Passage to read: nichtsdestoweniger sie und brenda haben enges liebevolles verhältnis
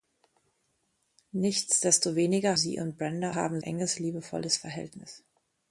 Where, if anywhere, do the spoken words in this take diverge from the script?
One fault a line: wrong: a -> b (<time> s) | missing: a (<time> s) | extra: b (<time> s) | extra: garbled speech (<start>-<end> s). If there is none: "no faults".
no faults